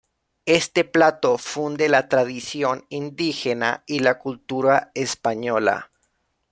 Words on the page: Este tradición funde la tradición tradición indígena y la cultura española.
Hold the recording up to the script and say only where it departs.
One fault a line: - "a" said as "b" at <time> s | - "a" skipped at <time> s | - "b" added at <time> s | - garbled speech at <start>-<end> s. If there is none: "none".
- "tradición" said as "plato" at 0.8 s
- "tradición" skipped at 2.9 s